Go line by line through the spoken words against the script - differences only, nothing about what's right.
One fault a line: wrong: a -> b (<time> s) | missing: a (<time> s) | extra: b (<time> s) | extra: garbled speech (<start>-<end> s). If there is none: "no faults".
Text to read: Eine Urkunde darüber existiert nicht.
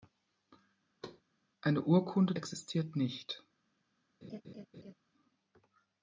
missing: darüber (2.3 s)